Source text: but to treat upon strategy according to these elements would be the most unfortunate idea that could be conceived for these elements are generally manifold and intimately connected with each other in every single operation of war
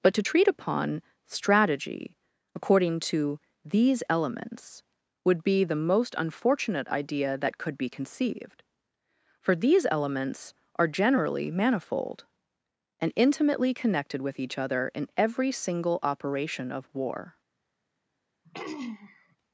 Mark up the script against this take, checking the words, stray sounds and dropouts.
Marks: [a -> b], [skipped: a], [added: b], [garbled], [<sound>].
but to treat upon strategy according to these elements would be the most unfortunate idea that could be conceived for these elements are generally manifold and intimately connected with each other in every single operation of war [throat clearing]